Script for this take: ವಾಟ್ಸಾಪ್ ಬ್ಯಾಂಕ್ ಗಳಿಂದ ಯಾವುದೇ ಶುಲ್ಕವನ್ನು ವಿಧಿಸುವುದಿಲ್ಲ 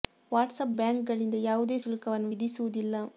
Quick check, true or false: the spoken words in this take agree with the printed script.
true